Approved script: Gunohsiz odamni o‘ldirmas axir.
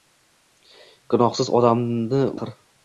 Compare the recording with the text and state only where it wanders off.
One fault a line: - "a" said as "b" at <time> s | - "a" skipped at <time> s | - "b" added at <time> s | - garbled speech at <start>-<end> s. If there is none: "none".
- "o‘ldirmas" skipped at 2.2 s